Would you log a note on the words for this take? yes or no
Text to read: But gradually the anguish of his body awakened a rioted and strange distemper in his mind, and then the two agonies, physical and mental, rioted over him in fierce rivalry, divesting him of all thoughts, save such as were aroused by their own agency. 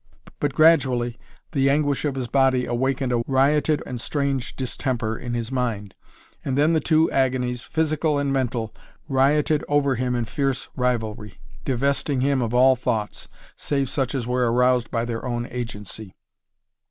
no